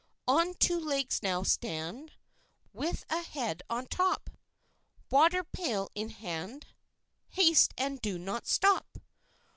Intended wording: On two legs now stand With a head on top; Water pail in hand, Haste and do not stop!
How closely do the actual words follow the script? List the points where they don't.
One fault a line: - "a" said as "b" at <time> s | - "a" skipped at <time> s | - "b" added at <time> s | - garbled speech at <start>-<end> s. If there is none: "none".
none